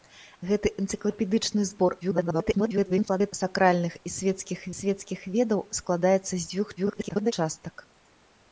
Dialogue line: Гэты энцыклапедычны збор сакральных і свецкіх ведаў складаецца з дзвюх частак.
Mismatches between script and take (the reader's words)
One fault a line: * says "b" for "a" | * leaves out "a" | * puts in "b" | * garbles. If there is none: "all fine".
* garbles
* puts in "свецкіх"
* garbles